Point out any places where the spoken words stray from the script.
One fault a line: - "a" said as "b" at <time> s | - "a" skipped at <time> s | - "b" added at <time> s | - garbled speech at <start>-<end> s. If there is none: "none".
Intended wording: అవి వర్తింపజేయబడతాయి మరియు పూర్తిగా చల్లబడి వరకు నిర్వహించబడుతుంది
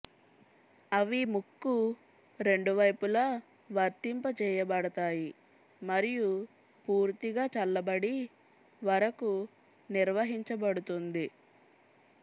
- "ముక్కు రెండు వైపులా" added at 1.3 s